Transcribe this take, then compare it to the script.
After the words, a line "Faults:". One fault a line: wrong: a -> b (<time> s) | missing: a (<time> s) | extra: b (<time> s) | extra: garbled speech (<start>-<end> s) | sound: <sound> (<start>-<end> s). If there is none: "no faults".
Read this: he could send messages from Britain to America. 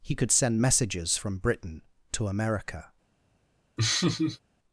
he could send messages from Britain to America.
Faults:
sound: laugh (3.8-4.4 s)